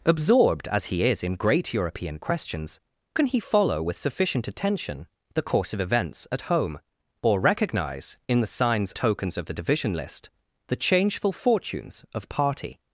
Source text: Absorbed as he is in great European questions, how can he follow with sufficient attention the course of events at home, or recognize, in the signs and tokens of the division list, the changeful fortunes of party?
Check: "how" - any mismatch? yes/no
yes